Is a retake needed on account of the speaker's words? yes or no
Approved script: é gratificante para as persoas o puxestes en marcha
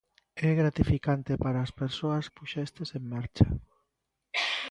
no